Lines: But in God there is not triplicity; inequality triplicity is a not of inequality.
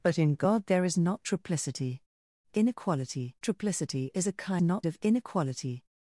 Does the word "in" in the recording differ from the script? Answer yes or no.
no